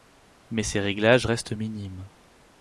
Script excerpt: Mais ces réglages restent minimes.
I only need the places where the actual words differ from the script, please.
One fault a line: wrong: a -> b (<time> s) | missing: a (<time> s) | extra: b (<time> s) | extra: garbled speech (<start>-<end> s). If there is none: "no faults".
no faults